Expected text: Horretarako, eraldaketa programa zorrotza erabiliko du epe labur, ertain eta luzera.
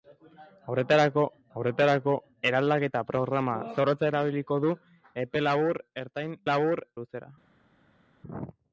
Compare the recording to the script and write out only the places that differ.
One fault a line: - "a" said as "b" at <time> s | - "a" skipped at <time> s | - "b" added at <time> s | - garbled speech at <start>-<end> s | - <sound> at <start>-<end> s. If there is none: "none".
- "horretarako" added at 1.6 s
- "eta" said as "labur" at 6.5 s